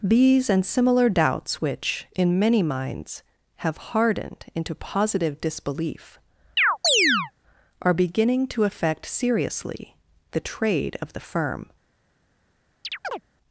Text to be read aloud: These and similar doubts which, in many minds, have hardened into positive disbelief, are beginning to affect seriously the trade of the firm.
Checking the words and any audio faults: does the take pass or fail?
fail